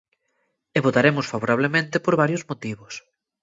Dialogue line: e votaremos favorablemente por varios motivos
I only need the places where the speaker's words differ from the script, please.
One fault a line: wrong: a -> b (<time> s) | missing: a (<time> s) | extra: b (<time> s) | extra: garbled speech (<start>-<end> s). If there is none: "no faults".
no faults